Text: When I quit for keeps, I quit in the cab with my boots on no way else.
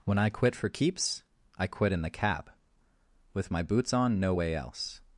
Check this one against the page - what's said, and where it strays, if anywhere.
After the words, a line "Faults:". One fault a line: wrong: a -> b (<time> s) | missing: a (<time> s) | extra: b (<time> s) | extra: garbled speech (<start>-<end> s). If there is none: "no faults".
When I quit for keeps, I quit in the cab with my boots on no way else.
Faults:
no faults